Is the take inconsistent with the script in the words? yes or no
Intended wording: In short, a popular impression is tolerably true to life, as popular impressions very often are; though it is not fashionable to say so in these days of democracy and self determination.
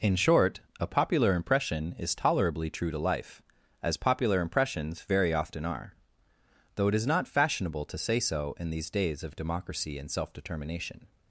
no